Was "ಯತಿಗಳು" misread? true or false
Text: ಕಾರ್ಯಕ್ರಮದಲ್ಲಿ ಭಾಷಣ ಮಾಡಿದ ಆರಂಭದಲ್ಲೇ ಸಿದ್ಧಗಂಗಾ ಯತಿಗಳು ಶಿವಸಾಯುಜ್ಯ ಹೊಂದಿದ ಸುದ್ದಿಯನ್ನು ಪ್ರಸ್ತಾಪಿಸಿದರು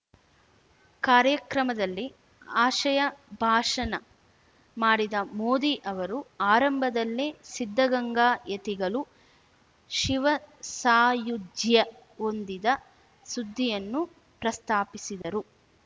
false